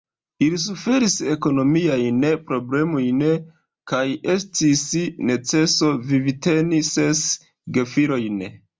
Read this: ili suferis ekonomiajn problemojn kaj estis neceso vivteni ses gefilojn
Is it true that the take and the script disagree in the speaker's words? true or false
false